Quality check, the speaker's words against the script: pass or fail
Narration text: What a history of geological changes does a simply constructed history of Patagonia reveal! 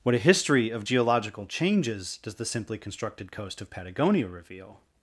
fail